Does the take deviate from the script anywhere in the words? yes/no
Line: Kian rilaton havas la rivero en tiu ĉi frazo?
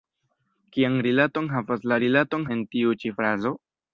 yes